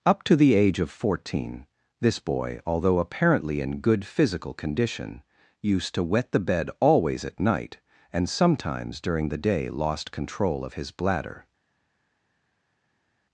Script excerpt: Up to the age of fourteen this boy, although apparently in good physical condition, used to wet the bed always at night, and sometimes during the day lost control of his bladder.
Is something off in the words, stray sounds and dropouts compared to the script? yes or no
no